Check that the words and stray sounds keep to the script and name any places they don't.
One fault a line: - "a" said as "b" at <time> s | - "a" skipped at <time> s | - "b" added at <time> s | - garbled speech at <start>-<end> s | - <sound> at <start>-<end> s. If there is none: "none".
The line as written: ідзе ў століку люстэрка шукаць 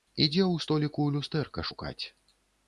none